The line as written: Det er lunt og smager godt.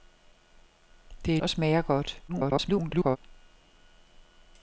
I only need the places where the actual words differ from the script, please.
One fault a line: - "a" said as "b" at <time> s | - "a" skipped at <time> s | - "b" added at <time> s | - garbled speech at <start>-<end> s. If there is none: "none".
- "lunt" skipped at 1.4 s
- garbled speech at 2.3-3.2 s